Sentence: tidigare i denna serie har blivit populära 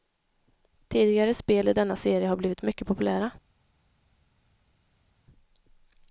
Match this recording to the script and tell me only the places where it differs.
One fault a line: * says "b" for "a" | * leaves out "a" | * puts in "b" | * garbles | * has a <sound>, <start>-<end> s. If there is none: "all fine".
* puts in "spel"
* puts in "mycket"